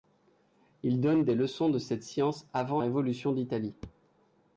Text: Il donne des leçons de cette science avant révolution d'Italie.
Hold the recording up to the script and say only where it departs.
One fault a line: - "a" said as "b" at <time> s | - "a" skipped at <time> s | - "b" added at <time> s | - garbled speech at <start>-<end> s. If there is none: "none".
none